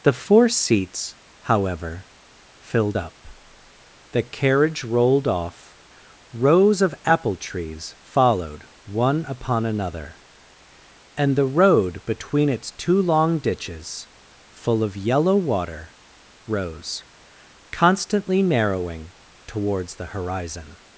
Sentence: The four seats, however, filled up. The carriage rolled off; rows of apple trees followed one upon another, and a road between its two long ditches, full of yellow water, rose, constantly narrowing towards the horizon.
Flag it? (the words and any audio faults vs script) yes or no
yes